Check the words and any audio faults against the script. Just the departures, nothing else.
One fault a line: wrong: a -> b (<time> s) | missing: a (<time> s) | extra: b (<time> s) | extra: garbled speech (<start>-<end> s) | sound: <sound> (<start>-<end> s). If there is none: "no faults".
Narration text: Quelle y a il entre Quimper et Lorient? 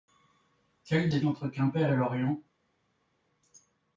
no faults